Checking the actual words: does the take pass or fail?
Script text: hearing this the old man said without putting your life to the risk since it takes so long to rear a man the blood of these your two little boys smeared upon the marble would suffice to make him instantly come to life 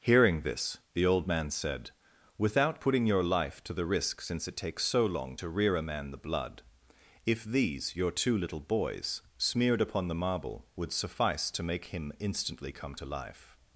fail